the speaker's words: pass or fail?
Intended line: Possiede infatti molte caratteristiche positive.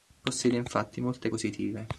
fail